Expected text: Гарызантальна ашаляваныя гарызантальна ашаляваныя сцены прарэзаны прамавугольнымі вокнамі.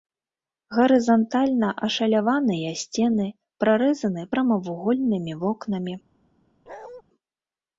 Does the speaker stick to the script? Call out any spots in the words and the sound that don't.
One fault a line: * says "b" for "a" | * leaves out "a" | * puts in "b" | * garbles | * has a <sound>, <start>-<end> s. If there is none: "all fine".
* leaves out "гарызантальна ашаляваныя"
* has a bark, 6.7-7.0 s